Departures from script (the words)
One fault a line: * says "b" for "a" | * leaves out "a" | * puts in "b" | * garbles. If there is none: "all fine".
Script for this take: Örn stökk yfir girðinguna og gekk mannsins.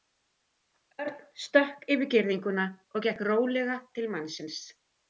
* puts in "rólega til"